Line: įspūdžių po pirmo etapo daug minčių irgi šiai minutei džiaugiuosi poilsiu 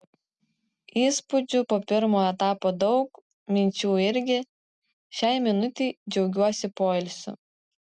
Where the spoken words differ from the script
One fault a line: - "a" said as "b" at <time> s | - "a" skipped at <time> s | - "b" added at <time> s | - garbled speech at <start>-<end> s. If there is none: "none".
none